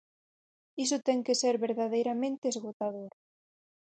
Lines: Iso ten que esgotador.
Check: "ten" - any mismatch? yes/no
no